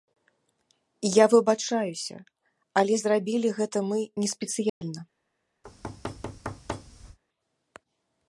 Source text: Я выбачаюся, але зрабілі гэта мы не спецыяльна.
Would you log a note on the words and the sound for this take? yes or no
yes